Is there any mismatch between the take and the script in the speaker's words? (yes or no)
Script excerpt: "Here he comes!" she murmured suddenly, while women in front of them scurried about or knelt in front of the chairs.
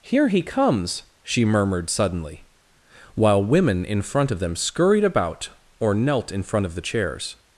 no